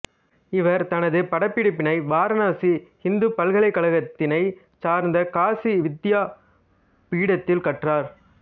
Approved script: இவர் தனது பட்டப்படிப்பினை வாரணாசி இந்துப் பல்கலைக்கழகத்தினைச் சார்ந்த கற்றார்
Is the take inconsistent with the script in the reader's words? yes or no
yes